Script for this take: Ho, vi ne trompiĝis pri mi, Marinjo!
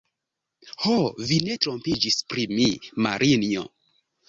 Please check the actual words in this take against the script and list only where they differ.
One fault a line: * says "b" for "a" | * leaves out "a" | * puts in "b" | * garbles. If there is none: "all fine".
all fine